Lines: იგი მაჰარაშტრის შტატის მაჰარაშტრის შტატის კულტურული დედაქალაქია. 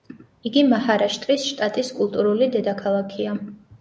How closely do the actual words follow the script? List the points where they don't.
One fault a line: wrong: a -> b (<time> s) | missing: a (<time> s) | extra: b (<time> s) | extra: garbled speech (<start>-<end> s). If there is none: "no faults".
missing: მაჰარაშტრის შტატის (1.9 s)